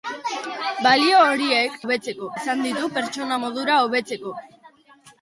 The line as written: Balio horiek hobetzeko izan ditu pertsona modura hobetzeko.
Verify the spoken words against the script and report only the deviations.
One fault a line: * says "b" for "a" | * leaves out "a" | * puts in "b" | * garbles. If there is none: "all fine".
all fine